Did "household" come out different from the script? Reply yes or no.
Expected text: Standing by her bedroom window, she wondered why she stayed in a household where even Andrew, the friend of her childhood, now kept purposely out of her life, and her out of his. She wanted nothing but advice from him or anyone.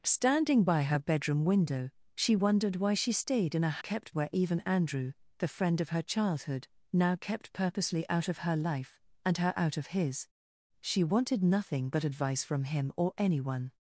yes